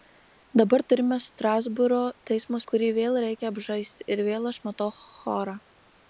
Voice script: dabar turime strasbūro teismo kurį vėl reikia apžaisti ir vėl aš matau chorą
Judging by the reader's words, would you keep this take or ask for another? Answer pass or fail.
pass